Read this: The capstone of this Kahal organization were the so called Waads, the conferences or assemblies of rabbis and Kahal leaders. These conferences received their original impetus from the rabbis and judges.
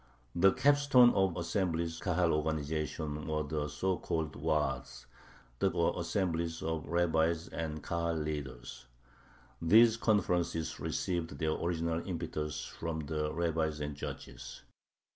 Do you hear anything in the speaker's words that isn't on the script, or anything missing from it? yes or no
yes